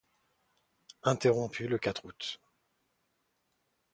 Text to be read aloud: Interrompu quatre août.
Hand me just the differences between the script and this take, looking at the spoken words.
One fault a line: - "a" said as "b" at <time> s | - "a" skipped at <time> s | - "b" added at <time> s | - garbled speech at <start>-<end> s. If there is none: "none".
- "le" added at 1.7 s